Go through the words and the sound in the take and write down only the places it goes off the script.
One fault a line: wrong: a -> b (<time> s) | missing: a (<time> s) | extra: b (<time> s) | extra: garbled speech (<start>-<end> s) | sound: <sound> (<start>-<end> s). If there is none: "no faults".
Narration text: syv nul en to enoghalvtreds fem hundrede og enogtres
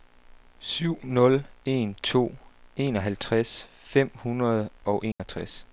sound: dropout (5.1-5.2 s)